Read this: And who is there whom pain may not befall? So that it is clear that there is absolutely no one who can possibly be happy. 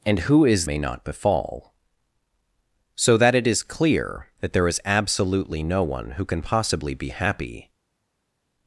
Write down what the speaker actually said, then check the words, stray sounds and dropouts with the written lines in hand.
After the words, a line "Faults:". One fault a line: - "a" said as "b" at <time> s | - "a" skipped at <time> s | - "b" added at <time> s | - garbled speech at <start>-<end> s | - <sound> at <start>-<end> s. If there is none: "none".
And who is may not befall? So that it is clear that there is absolutely no one who can possibly be happy.
Faults:
- "there whom pain" skipped at 0.7 s